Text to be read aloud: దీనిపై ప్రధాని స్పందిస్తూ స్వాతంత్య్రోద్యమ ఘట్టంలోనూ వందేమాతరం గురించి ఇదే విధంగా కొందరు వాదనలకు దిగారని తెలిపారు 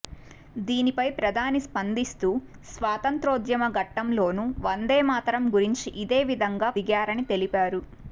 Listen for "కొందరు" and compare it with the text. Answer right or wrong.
wrong